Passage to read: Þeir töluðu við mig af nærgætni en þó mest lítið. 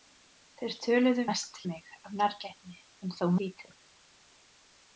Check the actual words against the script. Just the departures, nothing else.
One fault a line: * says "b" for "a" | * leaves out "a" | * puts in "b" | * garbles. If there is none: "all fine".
* says "mest" for "við"
* leaves out "mest"